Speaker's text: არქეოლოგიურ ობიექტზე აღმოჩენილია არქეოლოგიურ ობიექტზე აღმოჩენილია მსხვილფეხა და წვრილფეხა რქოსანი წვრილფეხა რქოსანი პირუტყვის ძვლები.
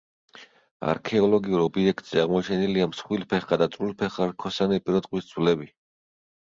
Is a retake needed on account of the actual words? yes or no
yes